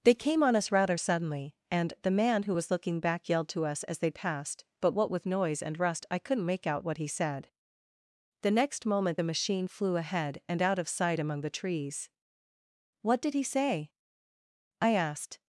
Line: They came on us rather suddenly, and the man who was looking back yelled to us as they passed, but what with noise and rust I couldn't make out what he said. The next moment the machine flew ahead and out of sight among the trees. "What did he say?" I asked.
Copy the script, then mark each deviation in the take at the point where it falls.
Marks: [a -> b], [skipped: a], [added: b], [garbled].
They came on us rather suddenly, and the man who was looking back yelled to us as they passed, but what with noise and rust I couldn't make out what he said. The next moment the machine flew ahead and out of sight among the trees. "What did he say?" I asked.